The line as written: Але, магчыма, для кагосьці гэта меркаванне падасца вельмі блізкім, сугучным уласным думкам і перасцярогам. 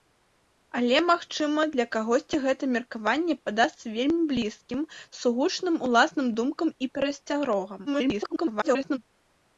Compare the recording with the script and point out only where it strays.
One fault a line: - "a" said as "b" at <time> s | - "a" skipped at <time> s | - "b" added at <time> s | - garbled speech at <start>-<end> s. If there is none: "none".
- garbled speech at 7.9-9.0 s